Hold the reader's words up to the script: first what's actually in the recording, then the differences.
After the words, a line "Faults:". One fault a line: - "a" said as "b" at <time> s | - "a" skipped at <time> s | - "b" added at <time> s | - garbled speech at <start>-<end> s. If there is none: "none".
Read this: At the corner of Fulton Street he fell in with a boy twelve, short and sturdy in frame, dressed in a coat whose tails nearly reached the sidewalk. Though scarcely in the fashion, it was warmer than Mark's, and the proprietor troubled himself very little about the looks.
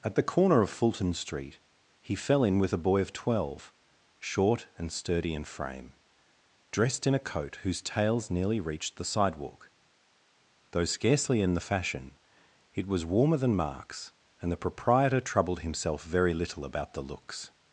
At the corner of Fulton Street he fell in with a boy of twelve, short and sturdy in frame, dressed in a coat whose tails nearly reached the sidewalk. Though scarcely in the fashion, it was warmer than Mark's, and the proprietor troubled himself very little about the looks.
Faults:
- "of" added at 3.0 s